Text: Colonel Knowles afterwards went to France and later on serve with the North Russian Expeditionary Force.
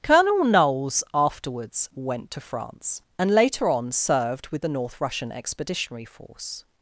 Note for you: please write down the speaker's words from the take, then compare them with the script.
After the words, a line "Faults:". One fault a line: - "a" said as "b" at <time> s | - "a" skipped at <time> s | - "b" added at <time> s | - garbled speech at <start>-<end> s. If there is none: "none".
Colonel Knowles afterwards went to France and later on served with the North Russian Expeditionary Force.
Faults:
- "serve" said as "served" at 3.9 s